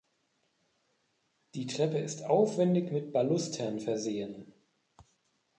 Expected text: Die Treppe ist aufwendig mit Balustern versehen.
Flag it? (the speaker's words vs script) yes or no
no